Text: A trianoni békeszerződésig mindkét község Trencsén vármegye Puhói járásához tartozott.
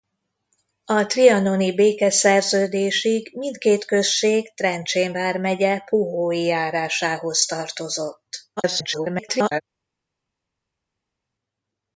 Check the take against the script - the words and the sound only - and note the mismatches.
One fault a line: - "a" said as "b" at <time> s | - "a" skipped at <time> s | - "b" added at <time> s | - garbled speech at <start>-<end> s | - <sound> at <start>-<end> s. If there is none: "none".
- garbled speech at 8.6-9.6 s